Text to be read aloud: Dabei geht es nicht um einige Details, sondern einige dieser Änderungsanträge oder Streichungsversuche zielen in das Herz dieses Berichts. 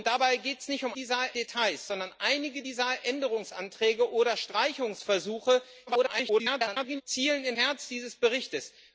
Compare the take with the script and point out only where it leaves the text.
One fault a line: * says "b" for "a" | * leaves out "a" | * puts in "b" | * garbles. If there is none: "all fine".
* says "dieser" for "einige"
* garbles
* leaves out "das"